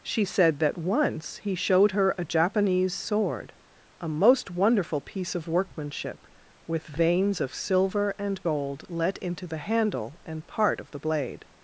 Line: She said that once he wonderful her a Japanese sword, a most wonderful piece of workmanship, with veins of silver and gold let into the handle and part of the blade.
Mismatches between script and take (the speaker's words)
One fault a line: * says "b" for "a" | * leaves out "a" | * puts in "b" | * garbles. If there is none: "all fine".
* says "showed" for "wonderful"